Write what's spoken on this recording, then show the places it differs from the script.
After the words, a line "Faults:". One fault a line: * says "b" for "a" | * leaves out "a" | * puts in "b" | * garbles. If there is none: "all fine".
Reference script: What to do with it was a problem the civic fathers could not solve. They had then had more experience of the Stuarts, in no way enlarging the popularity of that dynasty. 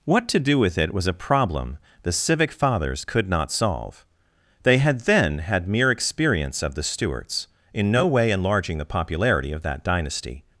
What to do with it was a problem the civic fathers could not solve. They had then had mere experience of the Stuarts, in no way enlarging the popularity of that dynasty.
Faults:
* says "mere" for "more"